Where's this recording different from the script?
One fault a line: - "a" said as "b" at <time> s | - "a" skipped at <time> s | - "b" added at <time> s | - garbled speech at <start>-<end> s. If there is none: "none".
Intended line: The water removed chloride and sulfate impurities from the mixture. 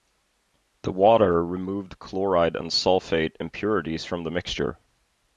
none